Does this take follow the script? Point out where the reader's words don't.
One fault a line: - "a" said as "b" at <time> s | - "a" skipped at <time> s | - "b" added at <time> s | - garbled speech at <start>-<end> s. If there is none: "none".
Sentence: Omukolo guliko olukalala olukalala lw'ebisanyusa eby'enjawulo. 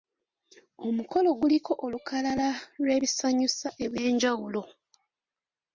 - "olukalala" skipped at 2.5 s